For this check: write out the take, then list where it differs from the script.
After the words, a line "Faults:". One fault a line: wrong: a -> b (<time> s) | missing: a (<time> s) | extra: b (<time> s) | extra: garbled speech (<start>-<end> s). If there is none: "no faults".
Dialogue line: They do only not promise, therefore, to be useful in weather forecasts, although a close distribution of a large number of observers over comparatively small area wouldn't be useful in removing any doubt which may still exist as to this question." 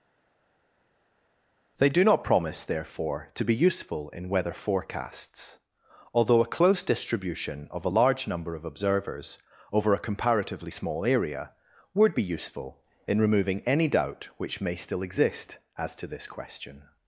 They do not promise, therefore, to be useful in weather forecasts, although a close distribution of a large number of observers over a comparatively small area would be useful in removing any doubt which may still exist as to this question."
Faults:
missing: only (2.0 s)
extra: a (9.9 s)
wrong: wouldn't -> would (11.9 s)